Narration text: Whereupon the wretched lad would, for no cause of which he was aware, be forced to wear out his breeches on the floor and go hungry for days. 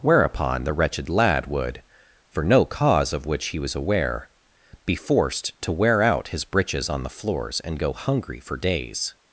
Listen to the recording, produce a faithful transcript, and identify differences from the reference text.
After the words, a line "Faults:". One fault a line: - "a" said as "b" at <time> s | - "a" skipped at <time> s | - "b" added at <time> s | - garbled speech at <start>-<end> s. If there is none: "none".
Whereupon the wretched lad would, for no cause of which he was aware, be forced to wear out his breeches on the floors and go hungry for days.
Faults:
- "floor" said as "floors" at 7.1 s